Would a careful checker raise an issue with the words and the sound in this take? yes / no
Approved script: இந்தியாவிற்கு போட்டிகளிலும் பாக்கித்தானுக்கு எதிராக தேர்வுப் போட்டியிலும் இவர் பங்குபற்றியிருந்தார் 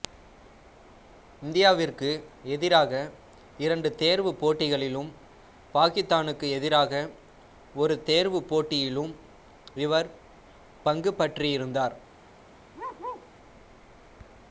yes